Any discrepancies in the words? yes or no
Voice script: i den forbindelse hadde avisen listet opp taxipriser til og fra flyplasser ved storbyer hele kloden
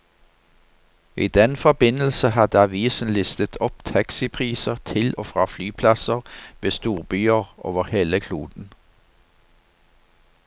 yes